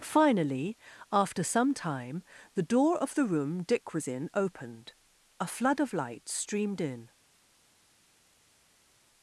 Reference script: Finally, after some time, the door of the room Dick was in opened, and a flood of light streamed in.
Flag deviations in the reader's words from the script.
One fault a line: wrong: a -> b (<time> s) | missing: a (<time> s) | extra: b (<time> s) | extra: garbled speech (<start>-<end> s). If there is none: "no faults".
missing: and (4.9 s)